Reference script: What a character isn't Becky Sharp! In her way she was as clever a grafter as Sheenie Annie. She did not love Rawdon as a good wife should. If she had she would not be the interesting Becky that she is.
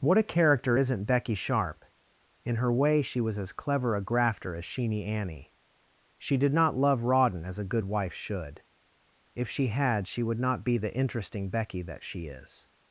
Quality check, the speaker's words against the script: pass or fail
pass